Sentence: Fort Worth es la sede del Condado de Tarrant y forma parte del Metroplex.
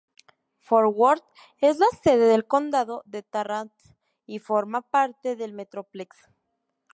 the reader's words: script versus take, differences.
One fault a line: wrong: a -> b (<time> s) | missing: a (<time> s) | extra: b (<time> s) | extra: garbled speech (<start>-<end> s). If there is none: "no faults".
no faults